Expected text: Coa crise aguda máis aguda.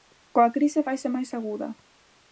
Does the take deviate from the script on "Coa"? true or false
false